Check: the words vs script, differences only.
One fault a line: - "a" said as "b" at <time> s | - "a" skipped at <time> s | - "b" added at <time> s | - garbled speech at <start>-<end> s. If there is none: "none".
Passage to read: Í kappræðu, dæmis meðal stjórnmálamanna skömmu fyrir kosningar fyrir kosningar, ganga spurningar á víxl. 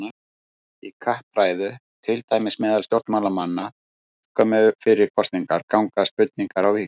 - "til" added at 2.0 s
- "fyrir kosningar" skipped at 5.6 s